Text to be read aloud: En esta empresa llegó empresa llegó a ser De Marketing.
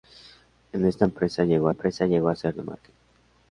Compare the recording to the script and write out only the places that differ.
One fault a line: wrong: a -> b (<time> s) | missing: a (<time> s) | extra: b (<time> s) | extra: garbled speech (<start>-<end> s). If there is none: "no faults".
no faults